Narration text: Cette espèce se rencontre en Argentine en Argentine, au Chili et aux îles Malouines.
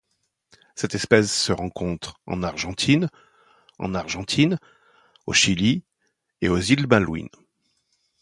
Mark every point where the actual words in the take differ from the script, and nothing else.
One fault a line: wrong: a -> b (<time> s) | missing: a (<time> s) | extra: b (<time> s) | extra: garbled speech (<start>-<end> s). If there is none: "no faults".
no faults